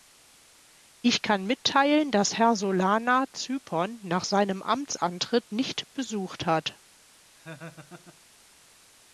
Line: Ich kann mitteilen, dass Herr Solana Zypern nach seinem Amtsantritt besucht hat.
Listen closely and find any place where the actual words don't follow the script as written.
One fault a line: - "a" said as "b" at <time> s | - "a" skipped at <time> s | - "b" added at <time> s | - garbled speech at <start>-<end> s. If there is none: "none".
- "nicht" added at 5.5 s